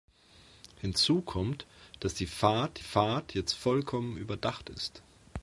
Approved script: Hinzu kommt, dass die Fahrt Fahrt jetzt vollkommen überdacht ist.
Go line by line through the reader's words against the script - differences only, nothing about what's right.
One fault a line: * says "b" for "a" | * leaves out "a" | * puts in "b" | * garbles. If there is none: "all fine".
all fine